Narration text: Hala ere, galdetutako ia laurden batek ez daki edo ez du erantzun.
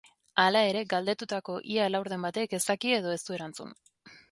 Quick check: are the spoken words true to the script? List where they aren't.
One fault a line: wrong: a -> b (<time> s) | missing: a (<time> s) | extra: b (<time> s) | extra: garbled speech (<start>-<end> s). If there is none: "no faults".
no faults